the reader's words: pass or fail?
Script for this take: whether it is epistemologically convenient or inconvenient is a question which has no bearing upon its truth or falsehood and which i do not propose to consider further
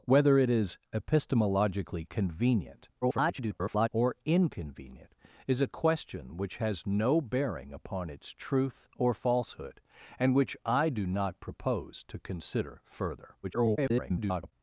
fail